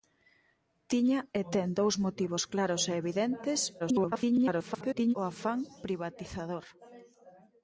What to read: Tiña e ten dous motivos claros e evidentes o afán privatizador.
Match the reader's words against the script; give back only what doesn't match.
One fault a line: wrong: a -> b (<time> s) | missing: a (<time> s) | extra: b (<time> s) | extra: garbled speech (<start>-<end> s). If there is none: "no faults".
extra: garbled speech (3.8-5.1 s)